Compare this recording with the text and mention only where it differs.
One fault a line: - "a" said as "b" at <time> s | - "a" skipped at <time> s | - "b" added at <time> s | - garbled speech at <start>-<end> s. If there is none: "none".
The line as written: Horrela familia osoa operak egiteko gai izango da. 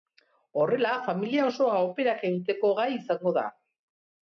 none